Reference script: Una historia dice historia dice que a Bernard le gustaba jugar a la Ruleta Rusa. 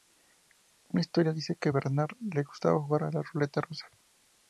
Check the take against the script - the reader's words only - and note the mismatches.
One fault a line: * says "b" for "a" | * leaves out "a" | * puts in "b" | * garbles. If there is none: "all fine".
* leaves out "historia dice"